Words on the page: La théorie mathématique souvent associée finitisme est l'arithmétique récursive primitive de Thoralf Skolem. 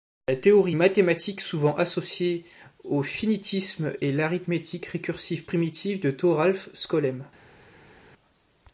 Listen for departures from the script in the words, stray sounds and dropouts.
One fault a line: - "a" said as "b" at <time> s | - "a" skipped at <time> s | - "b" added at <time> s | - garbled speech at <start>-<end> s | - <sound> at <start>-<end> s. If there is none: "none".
- "au" added at 2.8 s